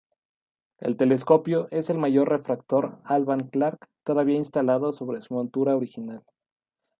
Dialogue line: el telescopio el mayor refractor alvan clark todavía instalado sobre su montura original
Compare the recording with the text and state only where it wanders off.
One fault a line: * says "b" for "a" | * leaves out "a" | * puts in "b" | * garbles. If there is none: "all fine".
* puts in "es"